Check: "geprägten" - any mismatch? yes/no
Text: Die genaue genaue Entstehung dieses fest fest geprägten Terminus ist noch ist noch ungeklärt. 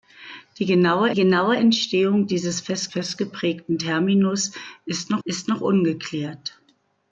no